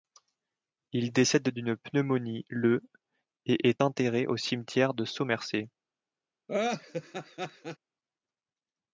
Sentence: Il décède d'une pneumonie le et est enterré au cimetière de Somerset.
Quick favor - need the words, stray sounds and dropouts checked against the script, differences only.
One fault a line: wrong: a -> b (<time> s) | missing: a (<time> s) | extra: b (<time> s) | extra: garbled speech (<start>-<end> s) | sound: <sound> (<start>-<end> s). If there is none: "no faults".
sound: laugh (6.5-7.8 s)